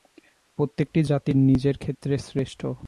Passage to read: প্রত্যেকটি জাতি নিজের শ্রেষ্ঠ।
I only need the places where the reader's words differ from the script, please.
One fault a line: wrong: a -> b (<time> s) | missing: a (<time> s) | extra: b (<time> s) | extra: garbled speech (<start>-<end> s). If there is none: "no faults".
extra: ক্ষেত্রে (1.8 s)